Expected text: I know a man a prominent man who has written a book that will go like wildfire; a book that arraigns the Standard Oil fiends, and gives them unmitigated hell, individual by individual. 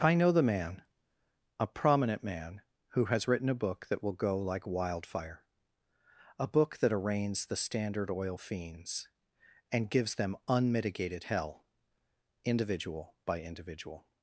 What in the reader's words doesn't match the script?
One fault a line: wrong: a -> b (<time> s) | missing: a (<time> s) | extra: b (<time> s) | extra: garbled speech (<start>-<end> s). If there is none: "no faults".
wrong: a -> the (0.3 s)